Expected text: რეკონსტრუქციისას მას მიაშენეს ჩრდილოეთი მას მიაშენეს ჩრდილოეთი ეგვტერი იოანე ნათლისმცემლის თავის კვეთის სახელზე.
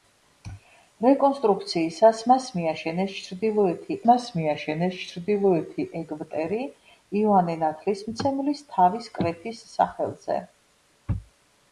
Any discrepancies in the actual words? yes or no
no